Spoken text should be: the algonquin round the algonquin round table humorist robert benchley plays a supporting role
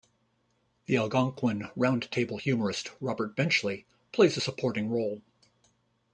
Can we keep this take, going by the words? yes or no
no